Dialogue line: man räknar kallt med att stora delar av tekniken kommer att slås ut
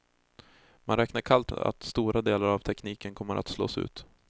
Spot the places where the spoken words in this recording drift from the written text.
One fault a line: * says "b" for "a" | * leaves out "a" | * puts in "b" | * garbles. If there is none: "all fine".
* leaves out "med"